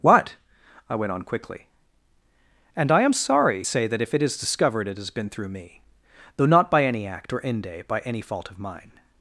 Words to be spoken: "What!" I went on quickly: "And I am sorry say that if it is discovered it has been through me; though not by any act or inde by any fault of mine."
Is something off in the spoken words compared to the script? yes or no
no